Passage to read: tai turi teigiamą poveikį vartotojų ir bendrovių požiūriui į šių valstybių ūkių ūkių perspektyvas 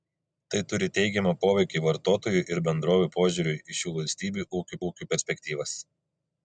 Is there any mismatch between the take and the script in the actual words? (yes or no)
no